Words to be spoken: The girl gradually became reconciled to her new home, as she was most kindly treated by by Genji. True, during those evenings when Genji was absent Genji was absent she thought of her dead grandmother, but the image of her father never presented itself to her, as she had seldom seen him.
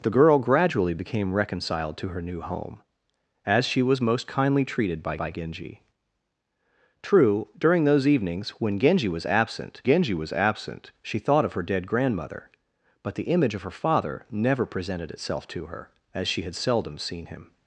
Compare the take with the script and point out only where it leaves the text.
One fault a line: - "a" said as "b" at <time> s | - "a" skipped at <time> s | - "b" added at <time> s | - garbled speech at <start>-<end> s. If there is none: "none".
none